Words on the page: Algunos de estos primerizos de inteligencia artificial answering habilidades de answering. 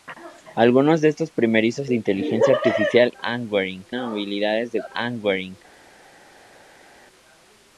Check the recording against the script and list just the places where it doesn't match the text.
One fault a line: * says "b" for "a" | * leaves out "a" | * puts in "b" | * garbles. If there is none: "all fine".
all fine